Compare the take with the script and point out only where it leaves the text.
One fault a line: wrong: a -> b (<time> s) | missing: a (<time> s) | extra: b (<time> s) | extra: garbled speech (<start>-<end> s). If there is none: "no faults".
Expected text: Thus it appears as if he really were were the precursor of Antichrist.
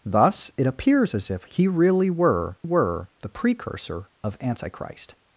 no faults